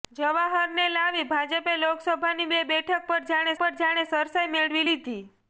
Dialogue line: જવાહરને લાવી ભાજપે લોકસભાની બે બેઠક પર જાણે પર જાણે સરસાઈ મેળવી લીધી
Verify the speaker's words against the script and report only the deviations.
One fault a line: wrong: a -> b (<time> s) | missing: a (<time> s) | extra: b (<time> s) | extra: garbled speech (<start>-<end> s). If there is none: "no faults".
no faults